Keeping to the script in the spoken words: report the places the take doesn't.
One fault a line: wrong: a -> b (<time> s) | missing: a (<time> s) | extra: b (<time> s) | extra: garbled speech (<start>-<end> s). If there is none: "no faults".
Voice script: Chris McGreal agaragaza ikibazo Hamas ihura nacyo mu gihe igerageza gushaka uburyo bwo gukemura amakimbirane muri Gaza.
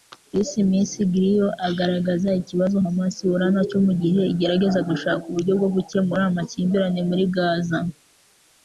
no faults